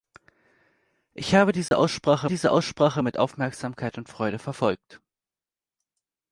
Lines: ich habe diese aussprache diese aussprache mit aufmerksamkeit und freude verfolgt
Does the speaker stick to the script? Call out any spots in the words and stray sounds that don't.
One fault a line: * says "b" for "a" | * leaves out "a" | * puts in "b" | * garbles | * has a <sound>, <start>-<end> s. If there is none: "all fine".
* has a dropout, 1.7-1.7 s